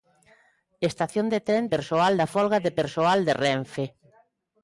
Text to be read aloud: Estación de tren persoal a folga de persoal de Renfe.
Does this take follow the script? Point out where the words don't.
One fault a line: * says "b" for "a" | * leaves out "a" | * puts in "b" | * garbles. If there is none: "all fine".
all fine